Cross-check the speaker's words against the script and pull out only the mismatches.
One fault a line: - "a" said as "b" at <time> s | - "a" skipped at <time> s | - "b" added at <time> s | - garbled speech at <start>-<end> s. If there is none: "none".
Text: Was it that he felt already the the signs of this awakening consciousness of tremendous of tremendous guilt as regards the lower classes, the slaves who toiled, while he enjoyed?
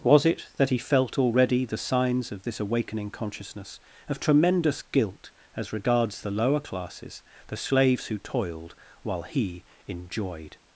- "the" skipped at 1.8 s
- "of tremendous" skipped at 4.8 s